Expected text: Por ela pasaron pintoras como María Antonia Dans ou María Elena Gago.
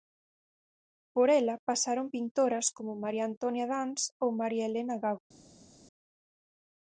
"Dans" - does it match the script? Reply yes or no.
yes